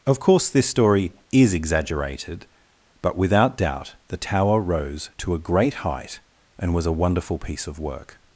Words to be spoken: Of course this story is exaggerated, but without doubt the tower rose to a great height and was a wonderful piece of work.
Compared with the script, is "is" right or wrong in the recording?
right